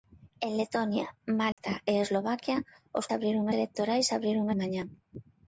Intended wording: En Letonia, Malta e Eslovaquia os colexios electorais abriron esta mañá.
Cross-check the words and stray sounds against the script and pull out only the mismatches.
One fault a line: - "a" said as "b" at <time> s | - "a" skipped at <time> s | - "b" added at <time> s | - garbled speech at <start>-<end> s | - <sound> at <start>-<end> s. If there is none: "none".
- dropout at 1.5-1.6 s
- "colexios" said as "abriron" at 3.2 s
- "esta" skipped at 4.5 s